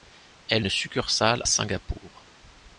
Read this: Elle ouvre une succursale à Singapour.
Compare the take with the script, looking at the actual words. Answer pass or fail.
fail